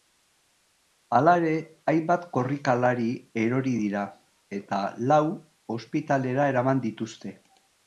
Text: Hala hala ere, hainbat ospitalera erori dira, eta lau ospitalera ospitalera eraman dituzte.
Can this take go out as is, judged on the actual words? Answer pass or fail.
fail